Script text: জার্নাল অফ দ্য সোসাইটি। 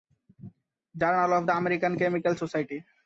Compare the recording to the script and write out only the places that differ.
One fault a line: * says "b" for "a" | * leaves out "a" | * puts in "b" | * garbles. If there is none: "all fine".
* puts in "আমেরিকান কেমিক্যাল"